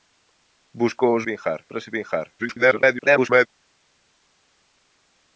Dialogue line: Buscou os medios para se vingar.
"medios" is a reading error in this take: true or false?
true